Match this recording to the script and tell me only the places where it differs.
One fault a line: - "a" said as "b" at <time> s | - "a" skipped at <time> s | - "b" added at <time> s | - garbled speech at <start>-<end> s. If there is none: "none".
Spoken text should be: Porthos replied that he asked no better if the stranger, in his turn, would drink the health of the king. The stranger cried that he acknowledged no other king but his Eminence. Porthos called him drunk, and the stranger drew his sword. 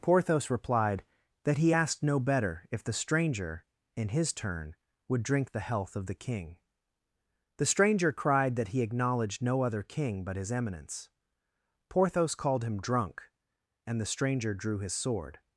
none